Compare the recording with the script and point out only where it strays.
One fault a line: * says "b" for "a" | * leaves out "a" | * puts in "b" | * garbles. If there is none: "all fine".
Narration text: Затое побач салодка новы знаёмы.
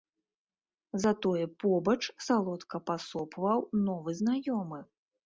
* puts in "пасопваў"